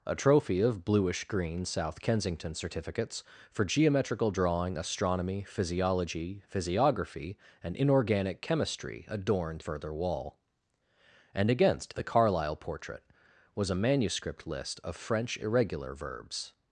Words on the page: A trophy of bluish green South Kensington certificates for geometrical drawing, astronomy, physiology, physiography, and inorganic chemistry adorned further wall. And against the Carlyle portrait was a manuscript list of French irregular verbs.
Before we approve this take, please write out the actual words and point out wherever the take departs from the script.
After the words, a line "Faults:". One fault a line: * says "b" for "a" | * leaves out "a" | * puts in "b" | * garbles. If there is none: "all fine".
A trophy of bluish green South Kensington certificates for geometrical drawing, astronomy, physiology, physiography, and inorganic chemistry adorned further wall. And against the Carlyle portrait was a manuscript list of French irregular verbs.
Faults:
all fine